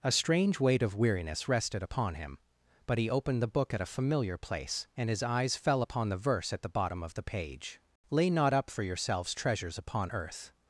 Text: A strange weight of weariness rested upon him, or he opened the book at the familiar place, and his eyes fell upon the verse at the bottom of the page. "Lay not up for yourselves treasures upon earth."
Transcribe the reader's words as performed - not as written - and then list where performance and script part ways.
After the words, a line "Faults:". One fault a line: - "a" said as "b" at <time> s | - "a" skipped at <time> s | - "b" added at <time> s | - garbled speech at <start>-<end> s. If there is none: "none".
A strange weight of weariness rested upon him, but he opened the book at a familiar place, and his eyes fell upon the verse at the bottom of the page. "Lay not up for yourselves treasures upon earth."
Faults:
- "or" said as "but" at 2.9 s
- "the" said as "a" at 3.8 s